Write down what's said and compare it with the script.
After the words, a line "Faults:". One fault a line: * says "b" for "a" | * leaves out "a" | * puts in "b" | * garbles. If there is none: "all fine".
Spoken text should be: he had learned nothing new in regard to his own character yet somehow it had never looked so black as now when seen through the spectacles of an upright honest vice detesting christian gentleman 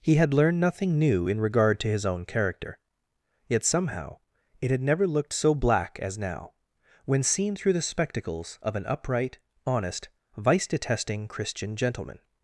he had learned nothing new in regard to his own character yet somehow it had never looked so black as now when seen through the spectacles of an upright honest vice detesting christian gentleman
Faults:
all fine